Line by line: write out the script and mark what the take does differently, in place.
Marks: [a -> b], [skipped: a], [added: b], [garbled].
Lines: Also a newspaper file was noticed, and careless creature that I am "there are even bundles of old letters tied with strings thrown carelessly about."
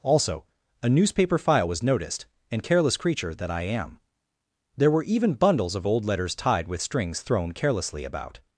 Also a newspaper file was noticed, and careless creature that I am "there [are -> were] even bundles of old letters tied with strings thrown carelessly about."